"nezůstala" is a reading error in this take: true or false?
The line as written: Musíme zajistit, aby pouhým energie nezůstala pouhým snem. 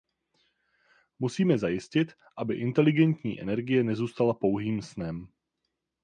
false